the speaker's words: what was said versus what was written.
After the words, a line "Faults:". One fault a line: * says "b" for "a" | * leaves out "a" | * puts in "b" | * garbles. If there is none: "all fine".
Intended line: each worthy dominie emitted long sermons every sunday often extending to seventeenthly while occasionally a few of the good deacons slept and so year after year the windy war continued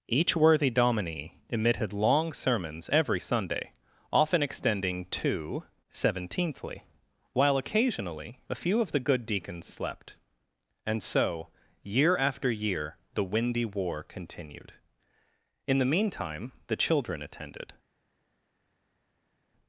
each worthy dominie emitted long sermons every sunday often extending to seventeenthly while occasionally a few of the good deacons slept and so year after year the windy war continued in the meantime the children attended
Faults:
* puts in "in the meantime the children attended"